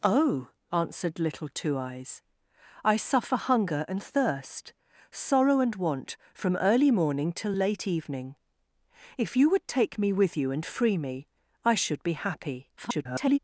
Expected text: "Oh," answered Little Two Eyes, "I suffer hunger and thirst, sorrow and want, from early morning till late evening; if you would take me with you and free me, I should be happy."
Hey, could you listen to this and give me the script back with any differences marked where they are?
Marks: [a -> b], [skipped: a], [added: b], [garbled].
"Oh," answered Little Two Eyes, "I suffer hunger and thirst, sorrow and want, from early morning till late evening; if you would take me with you and free me, I should be happy." [garbled]